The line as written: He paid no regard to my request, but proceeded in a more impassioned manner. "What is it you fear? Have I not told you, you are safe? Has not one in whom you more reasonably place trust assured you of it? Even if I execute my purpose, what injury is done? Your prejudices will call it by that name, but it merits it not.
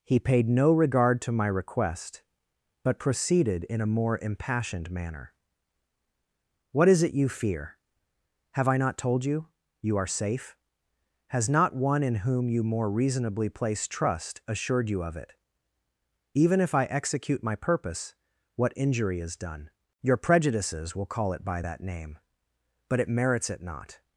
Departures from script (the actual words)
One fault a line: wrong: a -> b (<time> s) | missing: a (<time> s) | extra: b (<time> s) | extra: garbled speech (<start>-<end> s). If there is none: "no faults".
no faults